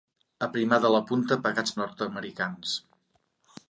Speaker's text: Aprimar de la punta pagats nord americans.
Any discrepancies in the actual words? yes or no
no